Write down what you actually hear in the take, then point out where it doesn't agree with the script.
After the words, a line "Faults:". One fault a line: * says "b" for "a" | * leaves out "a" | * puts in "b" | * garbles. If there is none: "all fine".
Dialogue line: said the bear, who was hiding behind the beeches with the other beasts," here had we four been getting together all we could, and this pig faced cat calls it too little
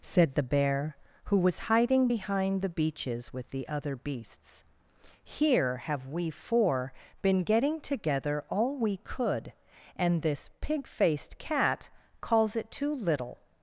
said the bear, who was hiding behind the beeches with the other beasts," here have we four been getting together all we could, and this pig faced cat calls it too little
Faults:
* says "have" for "had"